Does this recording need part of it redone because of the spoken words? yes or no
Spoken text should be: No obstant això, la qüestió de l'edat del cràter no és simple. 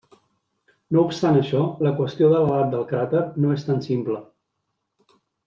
yes